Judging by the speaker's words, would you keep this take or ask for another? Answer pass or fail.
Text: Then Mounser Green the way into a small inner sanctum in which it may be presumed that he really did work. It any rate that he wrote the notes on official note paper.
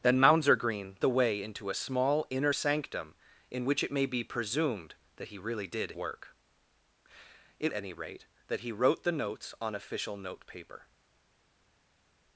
pass